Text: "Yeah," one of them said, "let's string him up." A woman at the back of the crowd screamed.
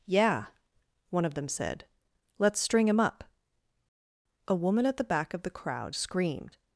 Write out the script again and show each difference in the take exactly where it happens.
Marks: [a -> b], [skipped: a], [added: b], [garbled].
"Yeah," one of them said, "let's string him up." A woman at the back of the crowd screamed.